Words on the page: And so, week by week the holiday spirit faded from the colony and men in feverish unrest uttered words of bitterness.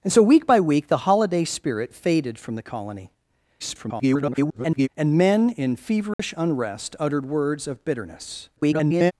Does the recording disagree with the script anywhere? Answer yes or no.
yes